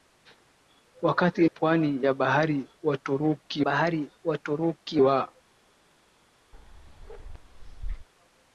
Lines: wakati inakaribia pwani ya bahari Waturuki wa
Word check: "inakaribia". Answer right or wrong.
wrong